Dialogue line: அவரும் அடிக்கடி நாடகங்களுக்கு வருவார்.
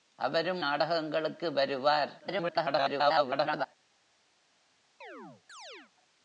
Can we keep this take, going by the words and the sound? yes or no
no